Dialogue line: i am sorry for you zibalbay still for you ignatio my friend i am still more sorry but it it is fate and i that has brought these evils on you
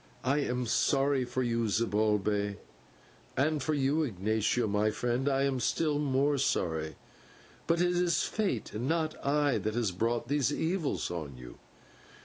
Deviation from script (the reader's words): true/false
true